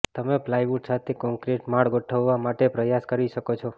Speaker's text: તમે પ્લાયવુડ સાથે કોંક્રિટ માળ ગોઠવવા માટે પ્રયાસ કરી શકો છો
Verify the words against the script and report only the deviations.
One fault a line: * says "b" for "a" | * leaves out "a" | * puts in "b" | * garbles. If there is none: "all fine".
all fine